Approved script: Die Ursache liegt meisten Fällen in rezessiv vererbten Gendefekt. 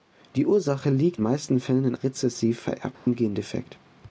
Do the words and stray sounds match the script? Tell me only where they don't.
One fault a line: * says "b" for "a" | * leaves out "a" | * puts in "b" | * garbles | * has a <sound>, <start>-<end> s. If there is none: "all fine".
* has a dropout, 2.9-3.1 s